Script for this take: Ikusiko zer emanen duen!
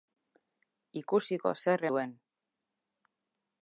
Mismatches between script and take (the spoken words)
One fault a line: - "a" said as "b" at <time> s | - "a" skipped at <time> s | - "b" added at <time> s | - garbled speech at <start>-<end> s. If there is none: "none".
- "emanen" skipped at 1.9 s